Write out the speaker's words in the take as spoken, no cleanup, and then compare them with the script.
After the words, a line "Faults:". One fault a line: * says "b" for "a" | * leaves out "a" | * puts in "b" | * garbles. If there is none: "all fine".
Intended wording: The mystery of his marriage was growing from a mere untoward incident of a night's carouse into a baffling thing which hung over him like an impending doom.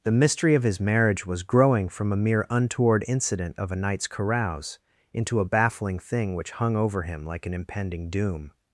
The mystery of his marriage was growing from a mere untoward incident of a night's carouse into a baffling thing which hung over him like an impending doom.
Faults:
all fine